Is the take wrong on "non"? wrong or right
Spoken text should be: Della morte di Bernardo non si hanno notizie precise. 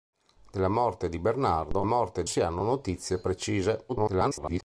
wrong